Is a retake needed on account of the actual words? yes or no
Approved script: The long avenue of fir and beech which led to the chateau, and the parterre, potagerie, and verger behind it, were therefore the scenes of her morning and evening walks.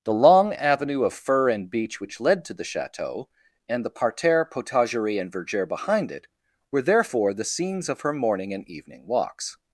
no